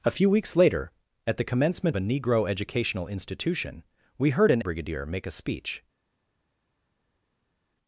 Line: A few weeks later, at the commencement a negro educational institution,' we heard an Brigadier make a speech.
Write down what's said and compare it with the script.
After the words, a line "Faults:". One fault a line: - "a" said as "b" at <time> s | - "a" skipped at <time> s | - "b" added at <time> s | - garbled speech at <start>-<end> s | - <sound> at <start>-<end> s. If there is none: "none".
A few weeks later, at the commencement a negro educational institution,' we heard an Brigadier make a speech.
Faults:
none